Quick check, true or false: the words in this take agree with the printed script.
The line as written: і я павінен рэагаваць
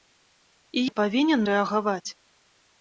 true